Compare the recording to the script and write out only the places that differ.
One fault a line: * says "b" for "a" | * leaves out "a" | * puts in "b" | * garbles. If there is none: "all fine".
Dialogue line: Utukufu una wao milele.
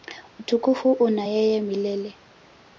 * says "yeye" for "wao"